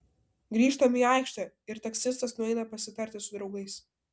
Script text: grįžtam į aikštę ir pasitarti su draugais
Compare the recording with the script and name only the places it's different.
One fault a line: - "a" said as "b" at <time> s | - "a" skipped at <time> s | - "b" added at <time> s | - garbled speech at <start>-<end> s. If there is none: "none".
- "taksistas nueina" added at 1.9 s